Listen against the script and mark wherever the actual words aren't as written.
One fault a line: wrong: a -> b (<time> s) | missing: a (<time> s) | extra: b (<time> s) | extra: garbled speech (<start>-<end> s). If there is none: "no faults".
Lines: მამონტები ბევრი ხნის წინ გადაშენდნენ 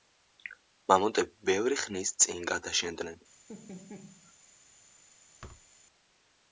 no faults